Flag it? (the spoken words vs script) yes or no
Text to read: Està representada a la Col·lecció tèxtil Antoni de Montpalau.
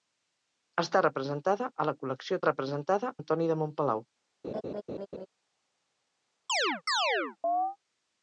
yes